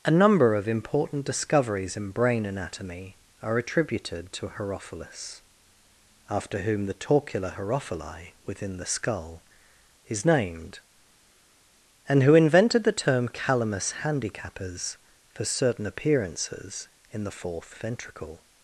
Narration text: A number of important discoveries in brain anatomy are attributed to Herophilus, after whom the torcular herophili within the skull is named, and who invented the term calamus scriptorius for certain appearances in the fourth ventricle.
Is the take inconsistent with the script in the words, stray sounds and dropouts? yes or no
yes